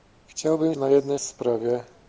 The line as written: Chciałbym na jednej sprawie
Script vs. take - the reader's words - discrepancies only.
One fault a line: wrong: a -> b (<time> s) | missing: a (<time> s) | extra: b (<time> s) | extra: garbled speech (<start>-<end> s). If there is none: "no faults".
no faults